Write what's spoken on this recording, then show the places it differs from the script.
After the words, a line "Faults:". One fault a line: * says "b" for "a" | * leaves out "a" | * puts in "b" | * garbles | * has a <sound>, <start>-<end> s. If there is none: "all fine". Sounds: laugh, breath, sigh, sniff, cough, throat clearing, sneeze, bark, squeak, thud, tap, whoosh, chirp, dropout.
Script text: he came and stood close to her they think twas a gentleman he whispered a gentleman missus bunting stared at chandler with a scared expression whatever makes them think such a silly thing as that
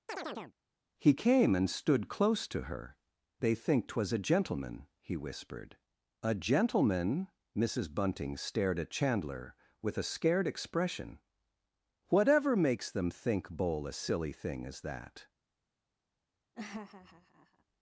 he came and stood close to her they think twas a gentleman he whispered a gentleman missus bunting stared at chandler with a scared expression whatever makes them think bowl a silly thing as that
Faults:
* has a chirp, 0.1-0.6 s
* says "bowl" for "such"
* has a laugh, 16.5-17.6 s